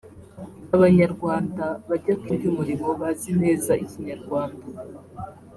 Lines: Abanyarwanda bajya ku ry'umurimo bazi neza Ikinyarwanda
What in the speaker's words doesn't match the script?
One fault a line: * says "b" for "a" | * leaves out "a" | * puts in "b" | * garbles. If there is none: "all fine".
all fine